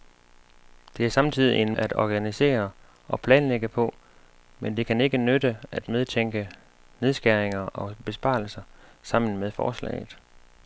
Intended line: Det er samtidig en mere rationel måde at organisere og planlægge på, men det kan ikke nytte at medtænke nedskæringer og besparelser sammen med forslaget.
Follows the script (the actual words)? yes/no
no